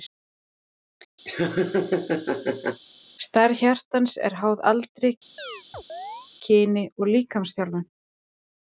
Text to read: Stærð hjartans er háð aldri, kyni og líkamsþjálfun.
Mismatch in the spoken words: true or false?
false